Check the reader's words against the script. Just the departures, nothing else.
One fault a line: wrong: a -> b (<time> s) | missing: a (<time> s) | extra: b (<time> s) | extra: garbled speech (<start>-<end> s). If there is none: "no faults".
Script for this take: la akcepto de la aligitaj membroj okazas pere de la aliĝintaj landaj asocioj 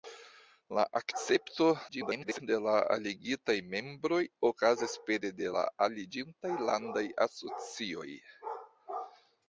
extra: garbled speech (1.9-2.4 s)